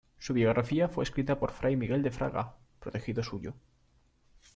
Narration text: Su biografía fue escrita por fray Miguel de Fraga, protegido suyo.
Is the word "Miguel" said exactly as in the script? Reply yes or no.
yes